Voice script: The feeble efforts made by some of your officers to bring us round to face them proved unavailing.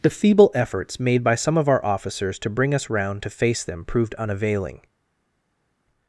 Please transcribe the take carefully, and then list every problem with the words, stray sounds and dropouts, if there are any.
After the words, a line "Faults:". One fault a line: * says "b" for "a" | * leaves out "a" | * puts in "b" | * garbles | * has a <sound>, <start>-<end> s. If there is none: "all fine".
The feeble efforts made by some of our officers to bring us round to face them proved unavailing.
Faults:
* says "our" for "your"